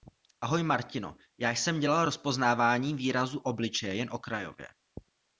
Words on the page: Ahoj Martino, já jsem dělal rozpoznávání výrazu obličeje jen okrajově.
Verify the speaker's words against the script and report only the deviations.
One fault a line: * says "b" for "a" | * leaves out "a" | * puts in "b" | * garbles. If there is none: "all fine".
all fine